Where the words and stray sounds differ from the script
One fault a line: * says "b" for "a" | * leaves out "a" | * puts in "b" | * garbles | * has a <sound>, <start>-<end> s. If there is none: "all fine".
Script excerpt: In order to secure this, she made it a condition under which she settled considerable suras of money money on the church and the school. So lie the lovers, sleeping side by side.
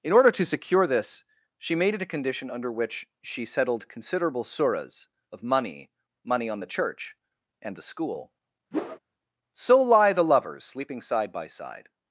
* has a whoosh, 8.7-9.0 s